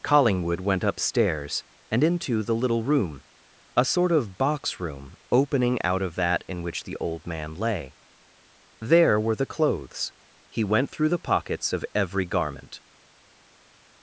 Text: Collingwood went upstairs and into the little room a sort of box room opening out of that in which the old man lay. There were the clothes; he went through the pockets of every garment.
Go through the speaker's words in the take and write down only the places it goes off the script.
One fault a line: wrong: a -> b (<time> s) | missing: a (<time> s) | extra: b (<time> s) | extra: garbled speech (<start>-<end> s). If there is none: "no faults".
no faults